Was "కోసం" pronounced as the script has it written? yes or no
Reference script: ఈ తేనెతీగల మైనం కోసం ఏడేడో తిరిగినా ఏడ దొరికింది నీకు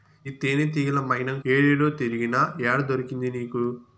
no